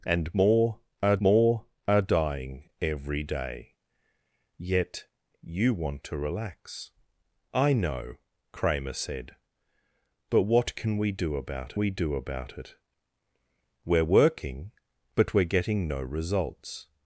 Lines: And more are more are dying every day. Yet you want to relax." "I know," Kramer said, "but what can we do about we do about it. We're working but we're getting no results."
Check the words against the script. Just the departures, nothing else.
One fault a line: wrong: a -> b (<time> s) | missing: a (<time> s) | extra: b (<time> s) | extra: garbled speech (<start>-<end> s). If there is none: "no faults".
no faults